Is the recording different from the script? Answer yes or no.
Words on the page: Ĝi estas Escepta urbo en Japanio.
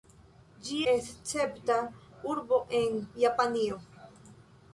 yes